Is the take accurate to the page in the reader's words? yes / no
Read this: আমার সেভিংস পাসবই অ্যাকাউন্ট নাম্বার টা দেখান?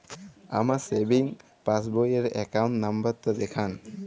no